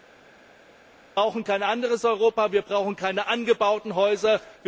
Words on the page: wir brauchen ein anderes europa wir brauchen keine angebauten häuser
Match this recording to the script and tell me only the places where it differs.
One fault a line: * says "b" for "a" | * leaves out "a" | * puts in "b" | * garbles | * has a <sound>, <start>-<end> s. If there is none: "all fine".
* says "kein" for "ein"